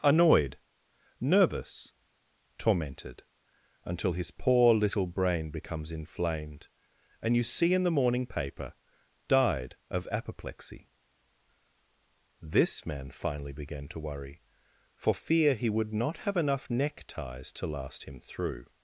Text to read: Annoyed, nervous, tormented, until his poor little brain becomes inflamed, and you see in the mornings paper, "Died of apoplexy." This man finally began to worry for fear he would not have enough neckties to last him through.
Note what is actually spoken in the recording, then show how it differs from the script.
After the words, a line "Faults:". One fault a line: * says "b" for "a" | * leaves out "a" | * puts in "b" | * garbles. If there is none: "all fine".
Annoyed, nervous, tormented, until his poor little brain becomes inflamed, and you see in the morning paper, "Died of apoplexy." This man finally began to worry for fear he would not have enough neckties to last him through.
Faults:
* says "morning" for "mornings"